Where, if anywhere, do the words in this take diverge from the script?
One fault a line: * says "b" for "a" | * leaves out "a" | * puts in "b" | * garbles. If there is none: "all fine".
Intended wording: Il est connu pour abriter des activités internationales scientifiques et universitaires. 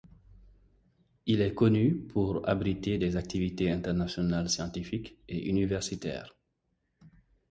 all fine